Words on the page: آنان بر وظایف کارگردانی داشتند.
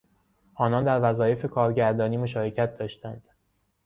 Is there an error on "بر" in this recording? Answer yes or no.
yes